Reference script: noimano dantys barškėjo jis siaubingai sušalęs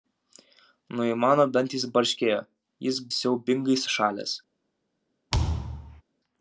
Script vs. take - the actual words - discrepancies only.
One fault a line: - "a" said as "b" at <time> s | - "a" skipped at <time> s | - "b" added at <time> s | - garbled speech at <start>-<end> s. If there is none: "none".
none